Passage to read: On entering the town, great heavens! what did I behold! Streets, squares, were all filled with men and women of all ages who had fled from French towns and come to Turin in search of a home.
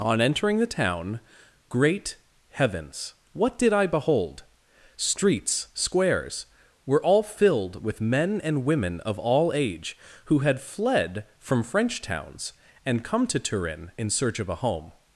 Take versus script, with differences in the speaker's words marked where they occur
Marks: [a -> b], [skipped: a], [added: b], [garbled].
On entering the town, great heavens! what did I behold! Streets, squares, were all filled with men and women of all [ages -> age] who had fled from French towns and come to Turin in search of a home.